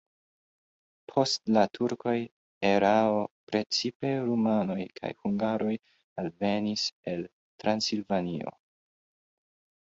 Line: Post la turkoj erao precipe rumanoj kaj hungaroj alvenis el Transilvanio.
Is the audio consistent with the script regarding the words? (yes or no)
yes